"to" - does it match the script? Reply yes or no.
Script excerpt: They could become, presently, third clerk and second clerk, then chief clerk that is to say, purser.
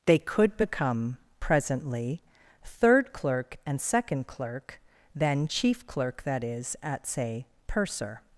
no